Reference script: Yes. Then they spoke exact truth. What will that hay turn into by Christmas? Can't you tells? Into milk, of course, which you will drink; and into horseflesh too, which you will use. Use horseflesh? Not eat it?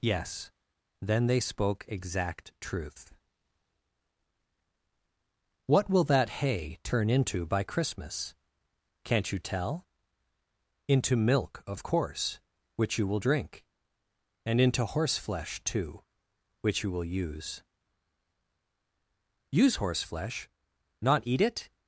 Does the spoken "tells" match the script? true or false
false